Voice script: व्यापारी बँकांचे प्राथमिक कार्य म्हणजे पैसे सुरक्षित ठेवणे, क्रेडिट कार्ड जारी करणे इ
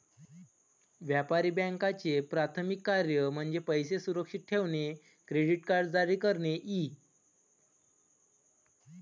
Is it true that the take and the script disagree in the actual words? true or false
false